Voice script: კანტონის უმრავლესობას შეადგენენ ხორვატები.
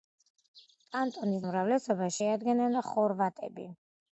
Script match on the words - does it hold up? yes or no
yes